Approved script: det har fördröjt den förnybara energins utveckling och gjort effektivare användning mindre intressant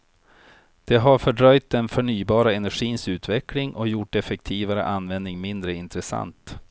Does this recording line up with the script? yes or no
yes